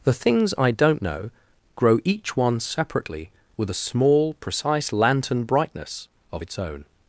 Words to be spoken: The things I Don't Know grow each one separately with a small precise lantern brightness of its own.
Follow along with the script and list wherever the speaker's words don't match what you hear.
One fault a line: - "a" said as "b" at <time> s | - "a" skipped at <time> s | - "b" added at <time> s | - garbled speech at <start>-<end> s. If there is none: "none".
none